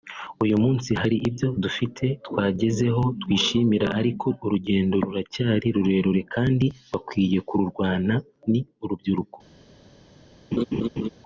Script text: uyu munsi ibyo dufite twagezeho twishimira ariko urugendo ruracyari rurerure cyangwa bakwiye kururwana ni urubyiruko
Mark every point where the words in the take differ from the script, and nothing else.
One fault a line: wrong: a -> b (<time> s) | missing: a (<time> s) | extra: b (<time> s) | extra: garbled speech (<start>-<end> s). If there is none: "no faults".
extra: hari (1.0 s)
wrong: cyangwa -> kandi (6.3 s)